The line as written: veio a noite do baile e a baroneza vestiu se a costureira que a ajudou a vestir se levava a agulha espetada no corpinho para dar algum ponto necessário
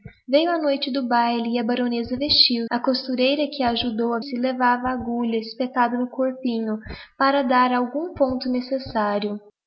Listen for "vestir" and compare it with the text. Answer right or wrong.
wrong